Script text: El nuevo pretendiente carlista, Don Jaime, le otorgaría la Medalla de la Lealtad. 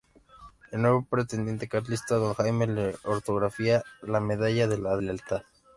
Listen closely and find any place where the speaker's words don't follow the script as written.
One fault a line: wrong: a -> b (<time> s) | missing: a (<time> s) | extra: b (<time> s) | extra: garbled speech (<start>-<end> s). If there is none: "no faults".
no faults